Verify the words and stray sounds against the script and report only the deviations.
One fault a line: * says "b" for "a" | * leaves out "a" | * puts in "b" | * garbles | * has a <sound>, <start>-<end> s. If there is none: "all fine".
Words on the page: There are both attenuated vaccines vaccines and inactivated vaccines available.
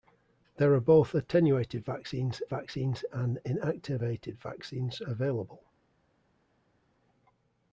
all fine